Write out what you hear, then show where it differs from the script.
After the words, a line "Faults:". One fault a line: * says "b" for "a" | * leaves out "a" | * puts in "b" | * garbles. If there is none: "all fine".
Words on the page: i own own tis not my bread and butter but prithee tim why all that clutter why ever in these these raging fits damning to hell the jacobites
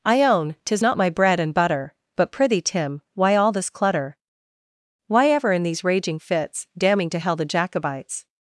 i own tis not my bread and butter but prithee tim why all this clutter why ever in these raging fits damning to hell the jacobites
Faults:
* leaves out "own"
* says "this" for "that"
* leaves out "these"